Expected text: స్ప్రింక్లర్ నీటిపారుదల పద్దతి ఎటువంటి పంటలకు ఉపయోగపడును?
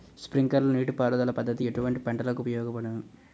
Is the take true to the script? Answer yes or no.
yes